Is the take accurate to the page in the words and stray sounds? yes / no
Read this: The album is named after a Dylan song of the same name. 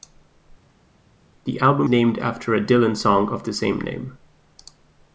no